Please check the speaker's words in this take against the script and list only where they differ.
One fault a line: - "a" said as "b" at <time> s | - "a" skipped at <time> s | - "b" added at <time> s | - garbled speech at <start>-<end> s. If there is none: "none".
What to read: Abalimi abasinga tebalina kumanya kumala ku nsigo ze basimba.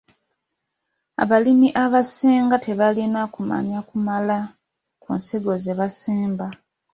none